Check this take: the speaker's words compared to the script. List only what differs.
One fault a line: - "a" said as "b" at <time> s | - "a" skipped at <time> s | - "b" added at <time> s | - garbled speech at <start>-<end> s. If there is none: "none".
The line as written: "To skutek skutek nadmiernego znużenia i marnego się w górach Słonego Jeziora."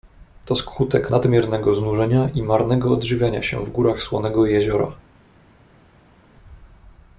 - "skutek" skipped at 1.1 s
- "odżywiania" added at 2.9 s